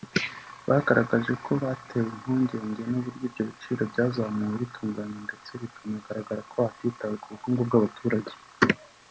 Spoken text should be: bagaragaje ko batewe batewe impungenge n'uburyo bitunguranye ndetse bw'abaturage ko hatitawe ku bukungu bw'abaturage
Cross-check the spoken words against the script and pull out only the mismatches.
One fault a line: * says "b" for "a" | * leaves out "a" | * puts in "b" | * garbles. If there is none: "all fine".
* leaves out "batewe"
* puts in "ibyo biciro byazamuwe"
* says "bikanagaragara" for "bw'abaturage"